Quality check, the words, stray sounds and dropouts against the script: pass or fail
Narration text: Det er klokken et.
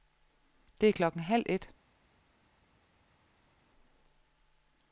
fail